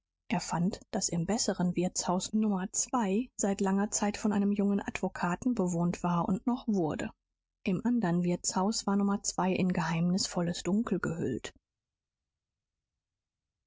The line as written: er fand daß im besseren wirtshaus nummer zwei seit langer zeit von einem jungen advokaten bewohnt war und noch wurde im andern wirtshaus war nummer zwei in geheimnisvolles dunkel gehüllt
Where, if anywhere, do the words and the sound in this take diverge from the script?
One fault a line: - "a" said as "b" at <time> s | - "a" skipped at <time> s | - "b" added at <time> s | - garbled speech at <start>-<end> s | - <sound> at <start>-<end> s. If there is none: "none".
none